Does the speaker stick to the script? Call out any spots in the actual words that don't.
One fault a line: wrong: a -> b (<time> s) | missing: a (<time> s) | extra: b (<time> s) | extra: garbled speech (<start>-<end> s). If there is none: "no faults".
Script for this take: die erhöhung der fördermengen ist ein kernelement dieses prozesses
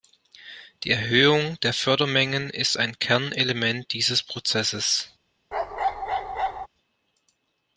no faults